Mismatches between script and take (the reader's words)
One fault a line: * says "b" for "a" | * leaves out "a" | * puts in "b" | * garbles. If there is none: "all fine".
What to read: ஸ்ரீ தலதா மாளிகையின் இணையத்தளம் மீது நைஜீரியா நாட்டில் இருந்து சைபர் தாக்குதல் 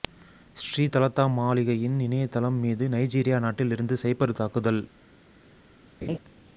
all fine